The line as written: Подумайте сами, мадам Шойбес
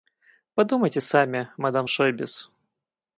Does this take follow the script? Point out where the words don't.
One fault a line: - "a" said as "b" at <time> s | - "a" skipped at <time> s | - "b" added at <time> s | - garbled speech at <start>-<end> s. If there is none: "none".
none